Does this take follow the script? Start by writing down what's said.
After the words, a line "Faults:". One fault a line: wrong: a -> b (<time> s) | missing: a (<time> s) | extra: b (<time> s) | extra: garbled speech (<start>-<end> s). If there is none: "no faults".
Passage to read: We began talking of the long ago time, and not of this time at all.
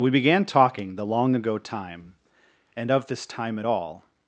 We began talking the long ago time, and of this time at all.
Faults:
missing: of (0.9 s)
missing: not (2.9 s)